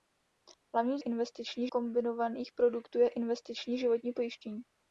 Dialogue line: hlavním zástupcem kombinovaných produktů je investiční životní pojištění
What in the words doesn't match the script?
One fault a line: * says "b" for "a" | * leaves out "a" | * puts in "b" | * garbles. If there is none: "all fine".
* says "investiční" for "zástupcem"